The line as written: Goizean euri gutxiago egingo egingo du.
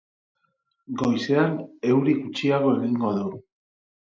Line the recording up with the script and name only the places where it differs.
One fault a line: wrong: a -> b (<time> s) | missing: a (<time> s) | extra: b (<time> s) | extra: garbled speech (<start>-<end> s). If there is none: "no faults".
missing: egingo (3.1 s)